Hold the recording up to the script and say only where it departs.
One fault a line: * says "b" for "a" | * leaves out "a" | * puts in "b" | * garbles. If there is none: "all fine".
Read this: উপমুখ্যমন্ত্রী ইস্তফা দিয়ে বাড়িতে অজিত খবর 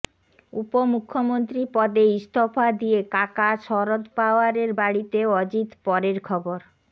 * puts in "পদে"
* puts in "কাকা শরদ পাওয়ারের"
* puts in "পরের"